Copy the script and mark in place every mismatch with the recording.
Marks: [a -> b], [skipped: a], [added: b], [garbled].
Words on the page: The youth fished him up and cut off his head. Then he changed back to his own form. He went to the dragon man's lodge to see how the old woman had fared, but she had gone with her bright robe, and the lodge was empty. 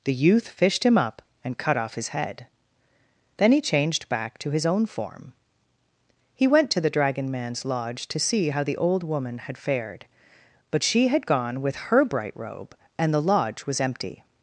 The youth fished him up and cut off his head. Then he changed back to his own form. He went to the dragon man's lodge to see how the old woman had fared, but she had gone with her bright robe, and the lodge was empty.